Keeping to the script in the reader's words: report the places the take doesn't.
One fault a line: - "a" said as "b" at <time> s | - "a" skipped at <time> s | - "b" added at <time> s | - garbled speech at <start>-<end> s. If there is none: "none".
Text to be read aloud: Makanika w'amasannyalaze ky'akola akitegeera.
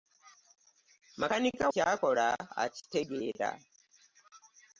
- "w'amasannyalaze" skipped at 1.6 s